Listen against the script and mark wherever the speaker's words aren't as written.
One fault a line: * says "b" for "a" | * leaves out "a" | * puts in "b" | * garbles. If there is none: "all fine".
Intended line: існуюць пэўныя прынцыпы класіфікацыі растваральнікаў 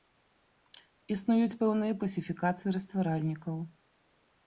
* leaves out "прынцыпы"